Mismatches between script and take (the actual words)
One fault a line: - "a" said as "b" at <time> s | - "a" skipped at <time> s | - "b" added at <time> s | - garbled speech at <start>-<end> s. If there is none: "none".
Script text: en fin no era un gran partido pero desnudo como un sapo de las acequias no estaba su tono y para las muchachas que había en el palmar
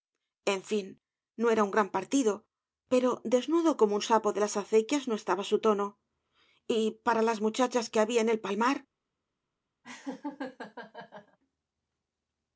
none